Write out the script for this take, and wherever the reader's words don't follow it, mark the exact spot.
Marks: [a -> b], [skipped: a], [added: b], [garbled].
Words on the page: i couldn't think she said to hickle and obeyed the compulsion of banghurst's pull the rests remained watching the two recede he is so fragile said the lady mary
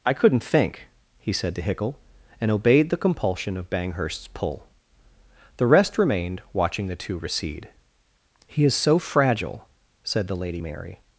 i couldn't think [she -> he] said to hickle and obeyed the compulsion of banghurst's pull the [rests -> rest] remained watching the two recede he is so fragile said the lady mary